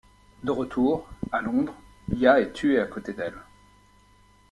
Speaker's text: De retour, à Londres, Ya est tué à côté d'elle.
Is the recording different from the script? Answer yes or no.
no